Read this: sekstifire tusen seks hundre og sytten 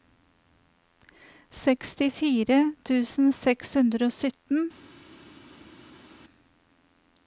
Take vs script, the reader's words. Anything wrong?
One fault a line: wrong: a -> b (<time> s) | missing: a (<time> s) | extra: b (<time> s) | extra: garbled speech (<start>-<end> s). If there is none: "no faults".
no faults